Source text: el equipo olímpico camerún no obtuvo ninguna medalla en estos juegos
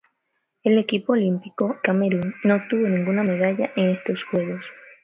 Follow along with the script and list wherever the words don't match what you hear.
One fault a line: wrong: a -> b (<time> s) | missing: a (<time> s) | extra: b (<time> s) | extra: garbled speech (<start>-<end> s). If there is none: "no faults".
no faults